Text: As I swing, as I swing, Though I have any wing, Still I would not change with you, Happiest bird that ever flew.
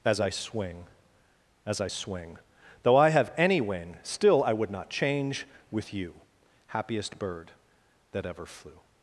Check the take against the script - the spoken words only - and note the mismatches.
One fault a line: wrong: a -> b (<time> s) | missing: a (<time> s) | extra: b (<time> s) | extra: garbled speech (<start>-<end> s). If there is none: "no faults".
no faults